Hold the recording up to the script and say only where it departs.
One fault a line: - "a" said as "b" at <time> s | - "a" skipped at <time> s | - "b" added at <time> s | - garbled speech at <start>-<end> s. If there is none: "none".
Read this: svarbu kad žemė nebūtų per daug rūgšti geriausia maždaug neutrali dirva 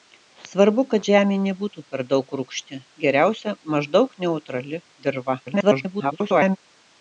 - garbled speech at 5.5-6.6 s